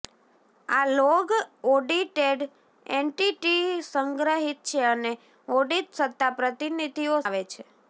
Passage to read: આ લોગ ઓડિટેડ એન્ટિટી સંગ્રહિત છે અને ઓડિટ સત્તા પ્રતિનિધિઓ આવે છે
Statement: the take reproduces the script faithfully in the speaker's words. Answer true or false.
true